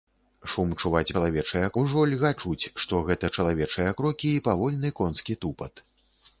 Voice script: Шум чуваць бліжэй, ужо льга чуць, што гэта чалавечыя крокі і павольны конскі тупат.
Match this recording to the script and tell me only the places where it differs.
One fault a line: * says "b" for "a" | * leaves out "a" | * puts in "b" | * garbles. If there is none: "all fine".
* says "чалавечыя" for "бліжэй"